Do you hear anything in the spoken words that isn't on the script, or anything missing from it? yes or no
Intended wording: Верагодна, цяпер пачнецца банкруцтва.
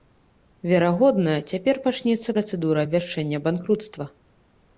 yes